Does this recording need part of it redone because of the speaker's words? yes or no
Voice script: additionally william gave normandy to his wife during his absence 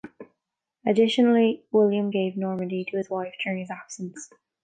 no